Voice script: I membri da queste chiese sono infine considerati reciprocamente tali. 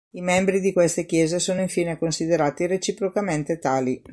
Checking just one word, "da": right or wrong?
wrong